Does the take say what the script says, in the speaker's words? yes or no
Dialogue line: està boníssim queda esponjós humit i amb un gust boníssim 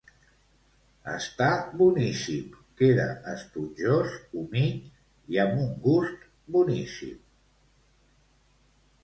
yes